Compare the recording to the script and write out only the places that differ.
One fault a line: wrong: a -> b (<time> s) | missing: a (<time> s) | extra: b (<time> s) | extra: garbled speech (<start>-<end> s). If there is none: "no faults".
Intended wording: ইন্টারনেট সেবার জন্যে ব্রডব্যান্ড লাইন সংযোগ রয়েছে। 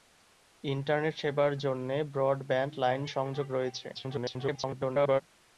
extra: garbled speech (3.9-5.2 s)